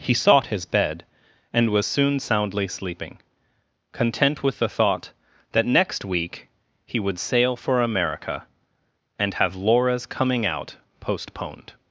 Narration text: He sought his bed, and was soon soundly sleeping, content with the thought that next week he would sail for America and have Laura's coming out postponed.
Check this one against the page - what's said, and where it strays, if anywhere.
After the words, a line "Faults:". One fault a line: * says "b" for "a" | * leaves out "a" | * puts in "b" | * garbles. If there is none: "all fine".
He sought his bed, and was soon soundly sleeping, content with the thought that next week he would sail for America and have Laura's coming out postponed.
Faults:
all fine